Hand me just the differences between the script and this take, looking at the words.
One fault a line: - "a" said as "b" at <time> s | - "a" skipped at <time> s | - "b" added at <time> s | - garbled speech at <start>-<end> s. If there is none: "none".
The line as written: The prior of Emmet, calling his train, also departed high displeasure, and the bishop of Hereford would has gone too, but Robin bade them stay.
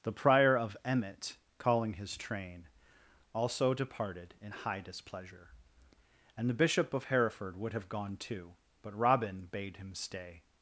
- "in" added at 4.4 s
- "has" said as "have" at 7.7 s
- "them" said as "him" at 9.8 s